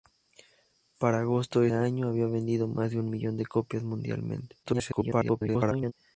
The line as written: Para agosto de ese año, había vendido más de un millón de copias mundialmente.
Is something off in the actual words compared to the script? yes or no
yes